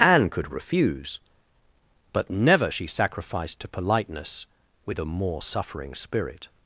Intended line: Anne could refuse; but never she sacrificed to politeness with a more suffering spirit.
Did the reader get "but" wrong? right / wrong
right